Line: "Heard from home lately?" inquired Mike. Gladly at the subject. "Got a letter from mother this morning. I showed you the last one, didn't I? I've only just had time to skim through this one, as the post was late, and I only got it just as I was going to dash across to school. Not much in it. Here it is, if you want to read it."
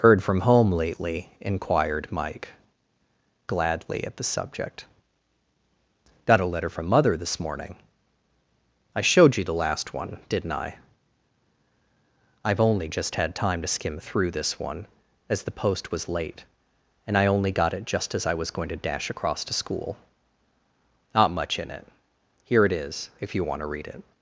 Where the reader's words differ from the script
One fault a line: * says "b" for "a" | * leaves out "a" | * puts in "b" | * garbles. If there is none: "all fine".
all fine